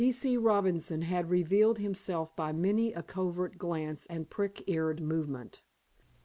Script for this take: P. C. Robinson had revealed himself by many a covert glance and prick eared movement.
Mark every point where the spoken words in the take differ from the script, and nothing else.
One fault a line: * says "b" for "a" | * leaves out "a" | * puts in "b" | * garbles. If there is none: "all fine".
all fine